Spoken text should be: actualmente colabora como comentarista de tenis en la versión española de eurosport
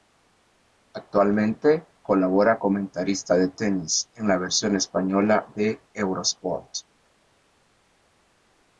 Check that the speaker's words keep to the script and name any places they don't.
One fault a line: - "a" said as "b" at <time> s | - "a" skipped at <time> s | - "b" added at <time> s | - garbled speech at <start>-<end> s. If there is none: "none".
- "como" skipped at 2.6 s